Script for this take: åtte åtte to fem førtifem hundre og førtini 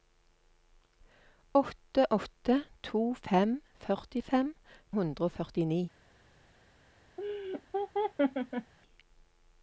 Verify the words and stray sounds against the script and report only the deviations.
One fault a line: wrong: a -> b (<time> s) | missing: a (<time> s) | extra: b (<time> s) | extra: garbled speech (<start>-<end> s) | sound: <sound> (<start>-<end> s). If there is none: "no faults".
sound: laugh (7.2-8.7 s)